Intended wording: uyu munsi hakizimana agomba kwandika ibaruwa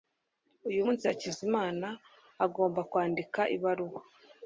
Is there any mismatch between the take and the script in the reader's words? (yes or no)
no